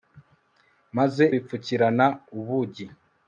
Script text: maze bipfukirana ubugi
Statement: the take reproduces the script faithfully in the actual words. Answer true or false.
true